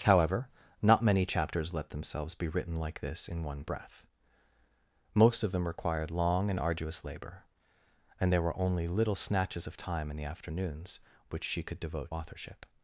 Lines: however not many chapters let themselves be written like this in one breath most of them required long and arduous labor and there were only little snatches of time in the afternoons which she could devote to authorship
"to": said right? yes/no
no